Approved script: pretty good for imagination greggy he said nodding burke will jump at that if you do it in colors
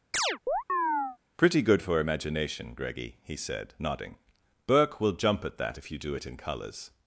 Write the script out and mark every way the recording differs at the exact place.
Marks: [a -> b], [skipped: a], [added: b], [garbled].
pretty good for imagination greggy he said nodding burke will jump at that if you do it in colors